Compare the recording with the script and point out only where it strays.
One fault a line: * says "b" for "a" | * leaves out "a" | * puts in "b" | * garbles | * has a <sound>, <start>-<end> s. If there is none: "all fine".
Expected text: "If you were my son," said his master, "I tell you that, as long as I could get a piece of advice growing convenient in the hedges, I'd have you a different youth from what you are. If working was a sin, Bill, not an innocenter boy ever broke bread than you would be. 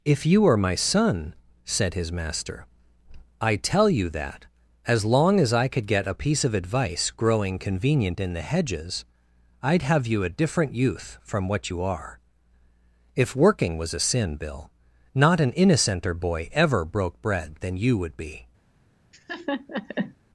* says "are" for "were"
* has a laugh, 19.1-20.1 s